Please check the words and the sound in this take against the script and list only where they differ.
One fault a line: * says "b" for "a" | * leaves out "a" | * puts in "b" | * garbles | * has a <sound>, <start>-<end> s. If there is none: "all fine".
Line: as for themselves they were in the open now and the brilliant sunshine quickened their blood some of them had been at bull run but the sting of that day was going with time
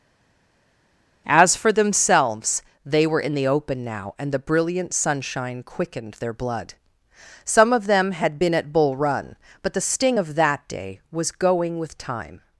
all fine